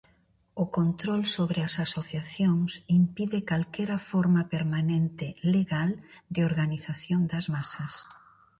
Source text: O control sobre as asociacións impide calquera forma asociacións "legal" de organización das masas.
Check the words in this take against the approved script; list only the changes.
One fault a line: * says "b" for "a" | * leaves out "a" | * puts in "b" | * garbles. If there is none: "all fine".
* says "permanente" for "asociacións"